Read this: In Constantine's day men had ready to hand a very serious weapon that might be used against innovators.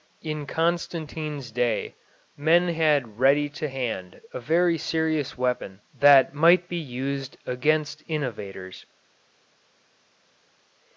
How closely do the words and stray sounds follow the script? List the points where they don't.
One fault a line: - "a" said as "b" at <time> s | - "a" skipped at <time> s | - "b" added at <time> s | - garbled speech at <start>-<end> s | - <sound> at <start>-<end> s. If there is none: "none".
none